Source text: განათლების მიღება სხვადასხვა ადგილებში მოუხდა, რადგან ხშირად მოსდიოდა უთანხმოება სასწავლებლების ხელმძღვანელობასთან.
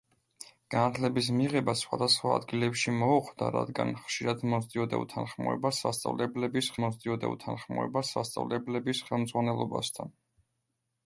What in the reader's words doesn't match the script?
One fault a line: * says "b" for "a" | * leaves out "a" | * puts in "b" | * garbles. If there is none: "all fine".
* puts in "მოსდიოდა უთანხმოება სასწავლებლების"